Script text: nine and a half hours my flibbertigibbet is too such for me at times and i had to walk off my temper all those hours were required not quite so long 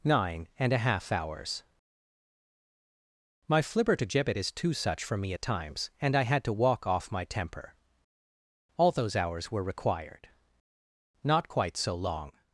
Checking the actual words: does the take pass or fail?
pass